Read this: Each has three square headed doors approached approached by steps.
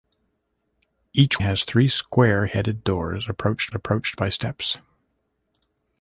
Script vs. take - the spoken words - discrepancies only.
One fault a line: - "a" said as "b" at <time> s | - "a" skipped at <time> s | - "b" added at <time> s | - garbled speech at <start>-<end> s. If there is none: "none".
none